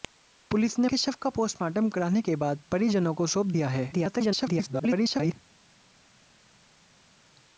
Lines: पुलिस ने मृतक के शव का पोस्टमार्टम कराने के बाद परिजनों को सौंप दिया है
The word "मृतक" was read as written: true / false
false